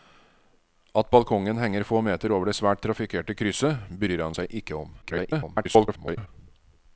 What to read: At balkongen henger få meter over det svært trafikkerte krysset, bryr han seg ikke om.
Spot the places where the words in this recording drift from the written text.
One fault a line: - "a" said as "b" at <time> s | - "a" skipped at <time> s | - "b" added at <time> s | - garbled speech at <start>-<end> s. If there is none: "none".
- garbled speech at 5.0-6.3 s